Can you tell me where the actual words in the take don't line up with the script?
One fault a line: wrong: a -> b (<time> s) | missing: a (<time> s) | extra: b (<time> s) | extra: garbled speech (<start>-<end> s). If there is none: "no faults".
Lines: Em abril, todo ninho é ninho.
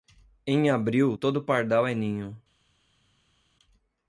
wrong: ninho -> pardal (1.4 s)